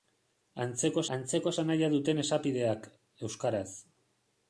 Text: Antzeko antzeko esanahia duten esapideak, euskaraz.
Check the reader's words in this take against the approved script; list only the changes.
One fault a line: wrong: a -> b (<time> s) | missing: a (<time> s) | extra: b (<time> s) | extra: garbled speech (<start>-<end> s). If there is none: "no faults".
no faults